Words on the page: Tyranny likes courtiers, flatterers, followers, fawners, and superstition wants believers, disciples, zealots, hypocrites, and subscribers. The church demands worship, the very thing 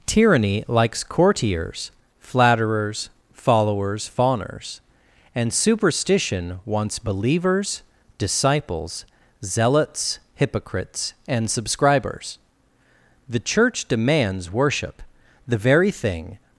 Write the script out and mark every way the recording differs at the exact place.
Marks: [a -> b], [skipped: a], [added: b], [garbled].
Tyranny likes courtiers, flatterers, followers, fawners, and superstition wants believers, disciples, zealots, hypocrites, and subscribers. The church demands worship, the very thing